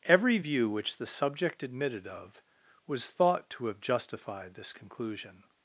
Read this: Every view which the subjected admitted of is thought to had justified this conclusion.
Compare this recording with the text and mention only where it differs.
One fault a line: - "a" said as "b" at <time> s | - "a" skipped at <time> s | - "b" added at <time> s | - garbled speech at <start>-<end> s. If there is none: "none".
- "subjected" said as "subject" at 1.1 s
- "is" said as "was" at 2.9 s
- "had" said as "have" at 3.7 s